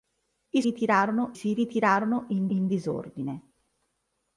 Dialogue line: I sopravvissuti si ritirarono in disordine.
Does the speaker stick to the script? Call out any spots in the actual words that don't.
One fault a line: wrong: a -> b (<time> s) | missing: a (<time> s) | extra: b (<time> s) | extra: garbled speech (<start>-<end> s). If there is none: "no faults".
wrong: sopravvissuti -> ritirarono (0.6 s)
extra: in (2.5 s)